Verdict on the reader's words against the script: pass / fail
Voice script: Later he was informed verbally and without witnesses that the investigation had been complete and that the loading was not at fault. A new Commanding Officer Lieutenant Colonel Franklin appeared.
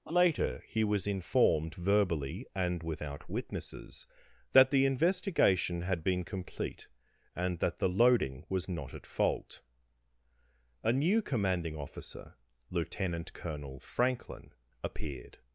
pass